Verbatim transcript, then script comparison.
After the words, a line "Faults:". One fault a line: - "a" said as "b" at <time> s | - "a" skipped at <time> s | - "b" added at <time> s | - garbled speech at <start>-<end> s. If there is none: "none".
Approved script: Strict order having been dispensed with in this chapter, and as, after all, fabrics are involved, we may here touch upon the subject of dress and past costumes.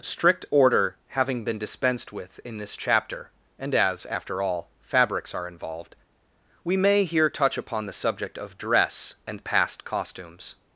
Strict order having been dispensed with in this chapter, and as, after all, fabrics are involved, we may here touch upon the subject of dress and past costumes.
Faults:
none